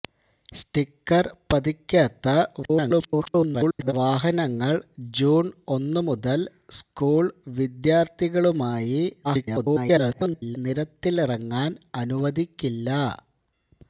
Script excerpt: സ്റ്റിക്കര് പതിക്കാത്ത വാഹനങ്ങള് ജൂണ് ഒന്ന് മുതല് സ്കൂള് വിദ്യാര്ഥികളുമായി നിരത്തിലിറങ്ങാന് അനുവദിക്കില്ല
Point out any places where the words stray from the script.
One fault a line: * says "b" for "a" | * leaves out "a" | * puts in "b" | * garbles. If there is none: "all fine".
* garbles
* garbles